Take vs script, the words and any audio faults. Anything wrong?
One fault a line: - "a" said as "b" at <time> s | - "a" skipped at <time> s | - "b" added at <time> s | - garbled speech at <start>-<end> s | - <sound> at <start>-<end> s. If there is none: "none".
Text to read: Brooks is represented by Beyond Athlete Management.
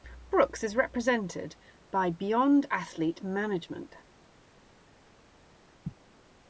none